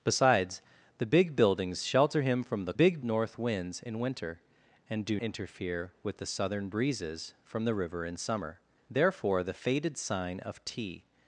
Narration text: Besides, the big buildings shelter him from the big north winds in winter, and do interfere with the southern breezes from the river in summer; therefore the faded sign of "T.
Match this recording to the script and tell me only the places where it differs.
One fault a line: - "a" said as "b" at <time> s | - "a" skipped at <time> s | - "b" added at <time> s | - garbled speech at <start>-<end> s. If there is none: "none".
none